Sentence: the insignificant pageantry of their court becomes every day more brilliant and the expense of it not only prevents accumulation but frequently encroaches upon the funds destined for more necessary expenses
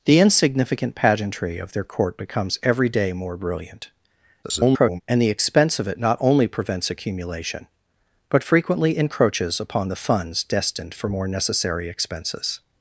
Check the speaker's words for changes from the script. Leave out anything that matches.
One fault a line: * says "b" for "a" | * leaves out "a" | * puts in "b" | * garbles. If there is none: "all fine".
* garbles